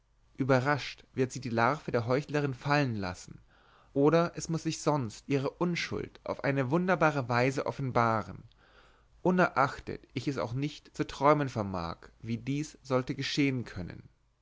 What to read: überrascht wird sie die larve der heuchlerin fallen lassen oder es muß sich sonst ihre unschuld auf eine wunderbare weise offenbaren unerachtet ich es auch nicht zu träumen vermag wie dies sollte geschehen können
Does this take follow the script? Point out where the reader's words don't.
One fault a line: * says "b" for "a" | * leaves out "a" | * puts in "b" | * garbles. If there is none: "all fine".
all fine